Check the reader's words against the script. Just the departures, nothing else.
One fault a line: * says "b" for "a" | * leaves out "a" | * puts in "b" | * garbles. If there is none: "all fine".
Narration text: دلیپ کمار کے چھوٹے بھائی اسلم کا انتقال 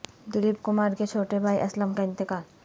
all fine